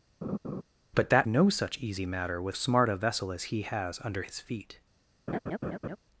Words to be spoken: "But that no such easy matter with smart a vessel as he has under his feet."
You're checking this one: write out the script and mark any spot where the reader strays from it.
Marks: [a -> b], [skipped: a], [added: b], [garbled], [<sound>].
[laugh] "But that no such easy matter with smart a vessel as he has under his feet." [laugh]